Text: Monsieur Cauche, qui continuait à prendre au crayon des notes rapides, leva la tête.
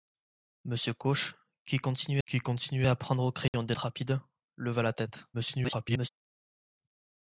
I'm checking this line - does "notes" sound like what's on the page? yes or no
no